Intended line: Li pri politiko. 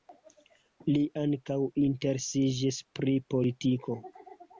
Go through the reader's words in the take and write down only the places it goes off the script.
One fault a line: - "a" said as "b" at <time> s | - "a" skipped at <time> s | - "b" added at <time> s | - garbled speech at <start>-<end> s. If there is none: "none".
- "ankaŭ interesiĝis" added at 1.2 s